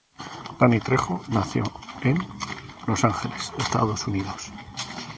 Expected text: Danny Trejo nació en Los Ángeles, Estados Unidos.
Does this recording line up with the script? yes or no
yes